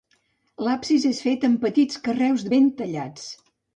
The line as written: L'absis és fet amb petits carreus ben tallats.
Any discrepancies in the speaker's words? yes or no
no